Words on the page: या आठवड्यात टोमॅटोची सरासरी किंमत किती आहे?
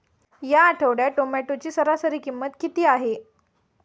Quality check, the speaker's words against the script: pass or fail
pass